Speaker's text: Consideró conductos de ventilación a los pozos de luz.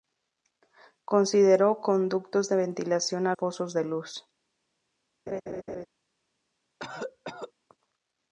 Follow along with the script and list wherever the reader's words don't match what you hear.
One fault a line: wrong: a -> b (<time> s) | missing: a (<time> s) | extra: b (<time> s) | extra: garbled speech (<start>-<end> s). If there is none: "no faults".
missing: los (3.4 s)